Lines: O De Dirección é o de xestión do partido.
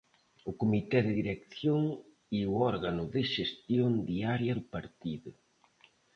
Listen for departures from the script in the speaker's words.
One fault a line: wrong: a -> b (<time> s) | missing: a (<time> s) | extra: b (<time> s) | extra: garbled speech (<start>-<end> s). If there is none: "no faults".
extra: Comité (0.6 s)
extra: órgano (2.7 s)
extra: diaria (4.1 s)